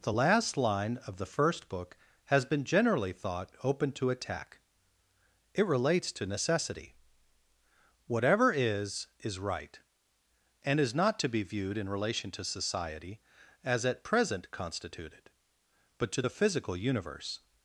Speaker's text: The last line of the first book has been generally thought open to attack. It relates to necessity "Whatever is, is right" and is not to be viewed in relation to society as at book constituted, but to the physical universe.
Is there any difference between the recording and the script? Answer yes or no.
yes